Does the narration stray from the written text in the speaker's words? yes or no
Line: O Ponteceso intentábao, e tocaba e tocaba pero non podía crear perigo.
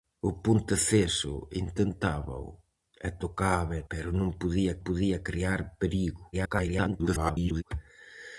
yes